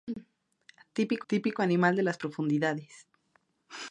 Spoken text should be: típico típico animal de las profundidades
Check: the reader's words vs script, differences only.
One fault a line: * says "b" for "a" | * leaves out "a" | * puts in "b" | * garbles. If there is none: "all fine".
all fine